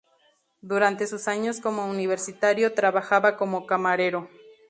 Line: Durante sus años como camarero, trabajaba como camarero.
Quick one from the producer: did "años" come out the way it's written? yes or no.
yes